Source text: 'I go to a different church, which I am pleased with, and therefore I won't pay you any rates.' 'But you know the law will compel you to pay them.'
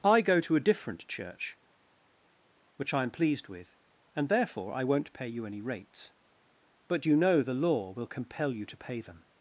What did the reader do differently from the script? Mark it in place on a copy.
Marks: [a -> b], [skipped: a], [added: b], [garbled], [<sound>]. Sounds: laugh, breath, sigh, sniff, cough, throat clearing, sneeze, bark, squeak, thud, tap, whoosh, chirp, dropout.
'I go to a different church, which I am pleased with, and therefore I won't pay you any rates.' 'But you know the law will compel you to pay them.'